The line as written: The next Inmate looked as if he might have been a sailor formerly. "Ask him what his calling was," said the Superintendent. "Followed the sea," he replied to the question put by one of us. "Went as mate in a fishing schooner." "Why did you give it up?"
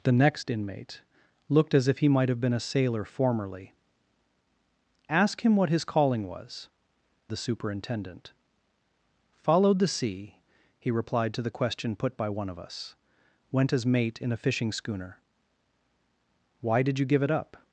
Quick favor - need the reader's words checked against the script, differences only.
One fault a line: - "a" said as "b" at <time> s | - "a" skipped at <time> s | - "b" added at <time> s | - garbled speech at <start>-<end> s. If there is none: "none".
- "said" skipped at 6.7 s